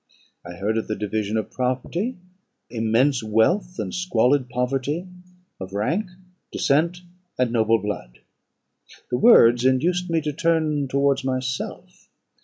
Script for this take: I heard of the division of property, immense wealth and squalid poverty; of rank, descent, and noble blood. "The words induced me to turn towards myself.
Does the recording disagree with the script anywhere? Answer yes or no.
no